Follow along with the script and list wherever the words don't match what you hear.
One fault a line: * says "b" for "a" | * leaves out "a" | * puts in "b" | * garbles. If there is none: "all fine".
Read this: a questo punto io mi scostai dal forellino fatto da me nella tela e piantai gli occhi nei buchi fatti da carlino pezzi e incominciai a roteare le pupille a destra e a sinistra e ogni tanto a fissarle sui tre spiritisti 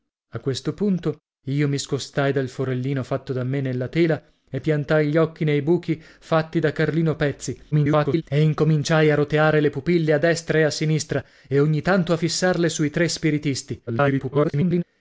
* garbles
* garbles